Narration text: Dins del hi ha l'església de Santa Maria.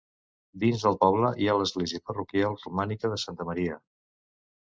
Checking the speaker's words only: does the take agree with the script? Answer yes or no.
no